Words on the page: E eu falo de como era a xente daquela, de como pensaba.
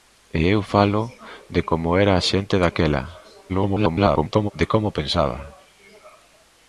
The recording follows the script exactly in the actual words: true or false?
false